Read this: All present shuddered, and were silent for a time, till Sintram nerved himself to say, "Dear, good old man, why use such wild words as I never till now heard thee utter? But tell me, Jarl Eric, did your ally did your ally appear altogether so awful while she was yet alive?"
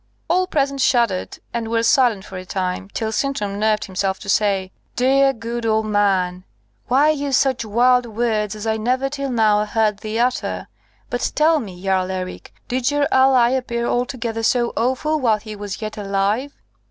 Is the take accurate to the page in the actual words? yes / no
no